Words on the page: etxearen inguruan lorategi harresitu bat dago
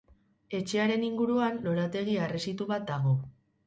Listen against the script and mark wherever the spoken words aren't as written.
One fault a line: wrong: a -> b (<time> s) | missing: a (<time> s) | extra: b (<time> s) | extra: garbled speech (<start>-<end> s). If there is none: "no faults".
no faults